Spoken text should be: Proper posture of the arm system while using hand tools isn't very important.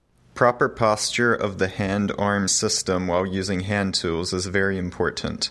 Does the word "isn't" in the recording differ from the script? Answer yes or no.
yes